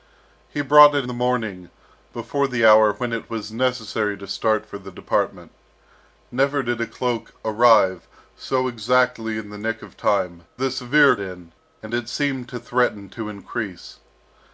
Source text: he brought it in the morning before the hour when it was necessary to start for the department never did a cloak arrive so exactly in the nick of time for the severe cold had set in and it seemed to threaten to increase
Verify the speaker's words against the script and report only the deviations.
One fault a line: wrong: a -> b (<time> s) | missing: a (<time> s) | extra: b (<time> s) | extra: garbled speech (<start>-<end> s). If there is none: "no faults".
missing: in (1.1 s)
missing: for (10.5 s)
missing: cold had set (11.1 s)